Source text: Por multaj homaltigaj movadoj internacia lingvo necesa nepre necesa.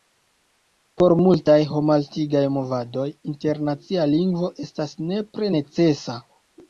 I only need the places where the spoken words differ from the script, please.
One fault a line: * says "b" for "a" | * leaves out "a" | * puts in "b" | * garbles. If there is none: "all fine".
* says "estas" for "necesa"